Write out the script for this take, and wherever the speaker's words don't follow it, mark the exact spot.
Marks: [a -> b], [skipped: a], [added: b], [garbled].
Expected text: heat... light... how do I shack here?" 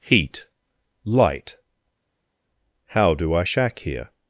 heat... light... how do I shack here?"